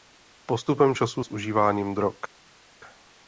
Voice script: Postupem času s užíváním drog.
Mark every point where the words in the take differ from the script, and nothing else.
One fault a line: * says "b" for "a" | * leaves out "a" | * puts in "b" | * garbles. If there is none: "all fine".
all fine